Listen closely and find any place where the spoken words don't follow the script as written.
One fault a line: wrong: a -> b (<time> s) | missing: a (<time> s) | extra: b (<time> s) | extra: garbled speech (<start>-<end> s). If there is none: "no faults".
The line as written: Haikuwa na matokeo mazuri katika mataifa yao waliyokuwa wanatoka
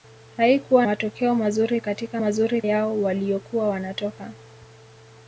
missing: na (0.9 s)
wrong: mataifa -> mazuri (2.2 s)